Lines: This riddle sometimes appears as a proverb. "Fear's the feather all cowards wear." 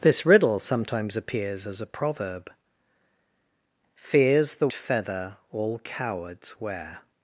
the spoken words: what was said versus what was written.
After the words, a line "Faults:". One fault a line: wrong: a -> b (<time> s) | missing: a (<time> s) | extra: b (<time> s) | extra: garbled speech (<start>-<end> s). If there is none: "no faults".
This riddle sometimes appears as a proverb. "Fear's the feather all cowards wear."
Faults:
no faults